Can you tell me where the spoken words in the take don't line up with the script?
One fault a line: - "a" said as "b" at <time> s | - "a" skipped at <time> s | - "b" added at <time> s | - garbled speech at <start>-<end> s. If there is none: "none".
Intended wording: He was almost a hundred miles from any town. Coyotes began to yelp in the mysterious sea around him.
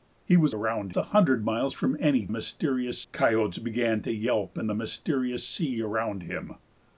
- "almost" said as "around" at 0.5 s
- "town" said as "mysterious" at 2.3 s